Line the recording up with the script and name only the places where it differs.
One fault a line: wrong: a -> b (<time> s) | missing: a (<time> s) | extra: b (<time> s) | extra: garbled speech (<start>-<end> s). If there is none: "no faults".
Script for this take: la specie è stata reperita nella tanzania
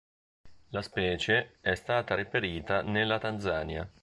no faults